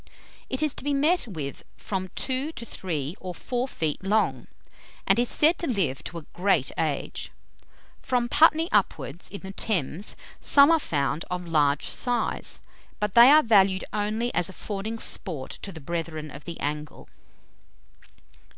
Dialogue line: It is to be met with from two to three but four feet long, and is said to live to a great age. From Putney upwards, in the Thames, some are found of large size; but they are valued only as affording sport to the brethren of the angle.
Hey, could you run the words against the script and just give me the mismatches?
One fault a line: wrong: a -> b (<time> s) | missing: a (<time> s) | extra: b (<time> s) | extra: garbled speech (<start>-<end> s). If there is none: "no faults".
wrong: but -> or (3.2 s)